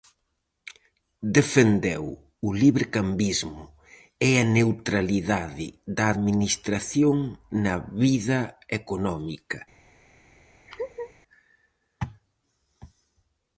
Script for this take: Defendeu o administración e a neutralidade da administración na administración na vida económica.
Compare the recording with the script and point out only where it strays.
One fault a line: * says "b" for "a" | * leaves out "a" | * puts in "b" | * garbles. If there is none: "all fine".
* says "librecambismo" for "administración"
* leaves out "administración na"